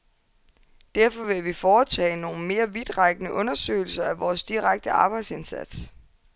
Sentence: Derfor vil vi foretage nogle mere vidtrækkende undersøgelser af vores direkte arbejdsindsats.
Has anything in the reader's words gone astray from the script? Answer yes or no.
no